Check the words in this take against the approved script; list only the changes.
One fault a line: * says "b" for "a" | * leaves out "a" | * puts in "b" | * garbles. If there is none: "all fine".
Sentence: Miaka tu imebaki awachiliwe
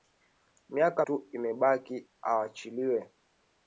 all fine